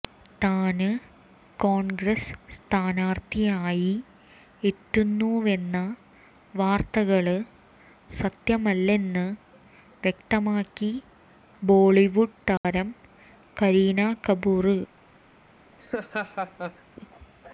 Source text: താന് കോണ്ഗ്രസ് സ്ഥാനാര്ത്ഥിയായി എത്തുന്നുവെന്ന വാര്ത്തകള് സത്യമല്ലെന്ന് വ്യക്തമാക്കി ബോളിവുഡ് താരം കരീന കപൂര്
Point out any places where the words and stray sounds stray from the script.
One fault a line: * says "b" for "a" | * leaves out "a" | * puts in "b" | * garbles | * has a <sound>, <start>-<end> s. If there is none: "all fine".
* has a dropout, 12.6-12.6 s
* has a laugh, 15.8-16.8 s